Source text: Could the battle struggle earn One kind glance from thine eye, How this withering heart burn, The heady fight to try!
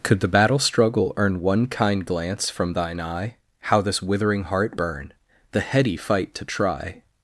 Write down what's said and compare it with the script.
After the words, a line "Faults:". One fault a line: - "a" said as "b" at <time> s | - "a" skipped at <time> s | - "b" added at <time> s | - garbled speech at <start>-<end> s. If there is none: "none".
Could the battle struggle earn One kind glance from thine eye, How this withering heart burn, The heady fight to try!
Faults:
none